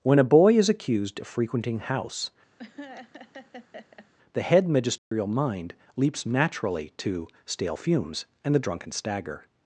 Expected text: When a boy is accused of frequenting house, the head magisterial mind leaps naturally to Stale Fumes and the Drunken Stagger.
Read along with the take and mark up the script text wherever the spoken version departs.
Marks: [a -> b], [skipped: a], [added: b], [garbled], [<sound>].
When a boy is accused of frequenting house, [laugh] the head magisterial [dropout] mind leaps naturally to Stale Fumes and the Drunken Stagger.